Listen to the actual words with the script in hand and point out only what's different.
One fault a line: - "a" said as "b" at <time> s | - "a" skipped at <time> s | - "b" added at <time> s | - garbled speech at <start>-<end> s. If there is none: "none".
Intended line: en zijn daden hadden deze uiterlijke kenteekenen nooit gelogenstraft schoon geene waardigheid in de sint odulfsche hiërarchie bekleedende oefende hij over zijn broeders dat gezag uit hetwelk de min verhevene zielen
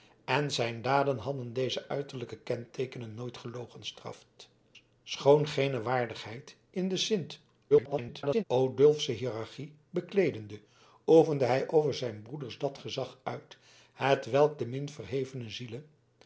- garbled speech at 7.7-8.4 s